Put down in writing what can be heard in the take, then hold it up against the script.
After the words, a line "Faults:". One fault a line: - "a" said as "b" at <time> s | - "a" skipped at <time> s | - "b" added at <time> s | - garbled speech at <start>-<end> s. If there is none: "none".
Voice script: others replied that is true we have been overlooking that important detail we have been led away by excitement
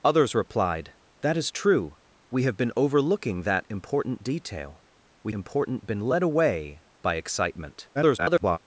others replied that is true we have been overlooking that important detail we important been led away by excitement [garbled]
Faults:
- "have" said as "important" at 5.3 s
- garbled speech at 7.9-8.6 s